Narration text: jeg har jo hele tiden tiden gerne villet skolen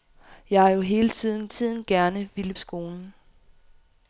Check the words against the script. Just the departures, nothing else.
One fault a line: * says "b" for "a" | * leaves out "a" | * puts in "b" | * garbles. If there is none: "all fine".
all fine